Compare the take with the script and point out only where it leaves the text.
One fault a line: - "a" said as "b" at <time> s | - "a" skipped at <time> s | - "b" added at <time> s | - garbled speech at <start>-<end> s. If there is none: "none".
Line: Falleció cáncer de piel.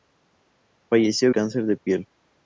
none